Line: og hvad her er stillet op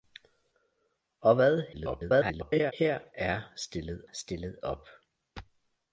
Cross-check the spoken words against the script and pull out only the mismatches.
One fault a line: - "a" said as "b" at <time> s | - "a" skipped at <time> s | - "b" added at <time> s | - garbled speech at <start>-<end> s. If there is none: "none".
- garbled speech at 1.7-2.7 s
- "stillet" added at 4.1 s